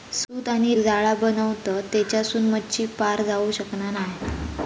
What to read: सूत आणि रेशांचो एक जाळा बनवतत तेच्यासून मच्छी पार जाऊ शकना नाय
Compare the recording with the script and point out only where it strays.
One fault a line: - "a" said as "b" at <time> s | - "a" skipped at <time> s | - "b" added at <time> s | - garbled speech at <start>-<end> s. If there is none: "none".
- "रेशांचो एक" skipped at 0.7 s